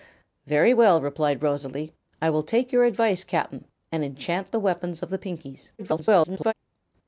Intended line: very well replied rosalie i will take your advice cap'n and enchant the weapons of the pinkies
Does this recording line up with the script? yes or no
no